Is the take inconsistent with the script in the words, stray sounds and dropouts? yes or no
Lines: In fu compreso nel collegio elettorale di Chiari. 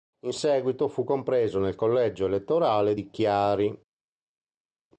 yes